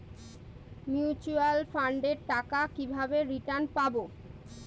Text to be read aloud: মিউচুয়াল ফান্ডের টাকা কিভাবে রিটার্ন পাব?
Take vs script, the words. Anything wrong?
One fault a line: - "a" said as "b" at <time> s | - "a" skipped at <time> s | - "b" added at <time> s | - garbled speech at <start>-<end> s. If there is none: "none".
none